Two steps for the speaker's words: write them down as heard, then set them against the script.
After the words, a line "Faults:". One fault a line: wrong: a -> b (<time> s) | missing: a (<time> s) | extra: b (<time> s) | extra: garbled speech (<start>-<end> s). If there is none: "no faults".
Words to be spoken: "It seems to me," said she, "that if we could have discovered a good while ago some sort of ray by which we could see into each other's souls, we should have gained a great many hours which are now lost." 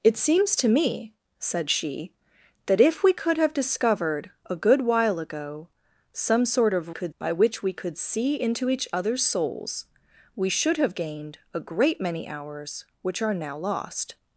"It seems to me," said she, "that if we could have discovered a good while ago some sort of could by which we could see into each other's souls, we should have gained a great many hours which are now lost."
Faults:
wrong: ray -> could (6.9 s)